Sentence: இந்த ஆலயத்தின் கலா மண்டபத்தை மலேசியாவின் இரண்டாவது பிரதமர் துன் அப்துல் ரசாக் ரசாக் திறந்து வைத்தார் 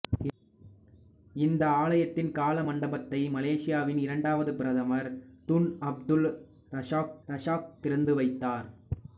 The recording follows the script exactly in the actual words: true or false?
true